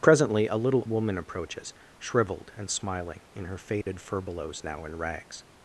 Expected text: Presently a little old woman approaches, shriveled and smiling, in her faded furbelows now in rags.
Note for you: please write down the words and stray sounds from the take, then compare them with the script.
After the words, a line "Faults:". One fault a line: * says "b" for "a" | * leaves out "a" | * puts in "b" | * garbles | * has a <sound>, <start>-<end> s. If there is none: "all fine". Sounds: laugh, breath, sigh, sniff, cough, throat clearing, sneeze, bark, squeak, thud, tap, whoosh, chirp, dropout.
Presently a little woman approaches, shriveled and smiling, in her faded furbelows now in rags.
Faults:
* leaves out "old"
* has a dropout, 3.8-3.9 s